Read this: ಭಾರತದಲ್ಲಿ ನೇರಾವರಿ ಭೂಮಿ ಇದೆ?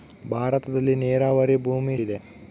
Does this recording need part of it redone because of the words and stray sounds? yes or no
no